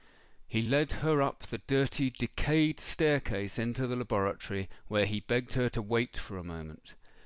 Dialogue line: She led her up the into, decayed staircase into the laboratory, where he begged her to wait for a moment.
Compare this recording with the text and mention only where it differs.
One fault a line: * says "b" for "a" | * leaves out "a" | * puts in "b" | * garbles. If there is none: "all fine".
* says "He" for "She"
* says "dirty" for "into"